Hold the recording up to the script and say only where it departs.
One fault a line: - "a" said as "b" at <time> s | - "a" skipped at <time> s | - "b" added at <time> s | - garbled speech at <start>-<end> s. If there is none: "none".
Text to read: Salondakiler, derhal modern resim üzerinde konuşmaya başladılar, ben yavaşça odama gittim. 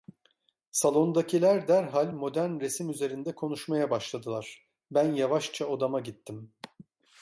none